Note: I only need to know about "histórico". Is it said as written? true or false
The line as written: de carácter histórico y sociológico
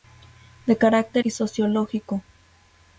false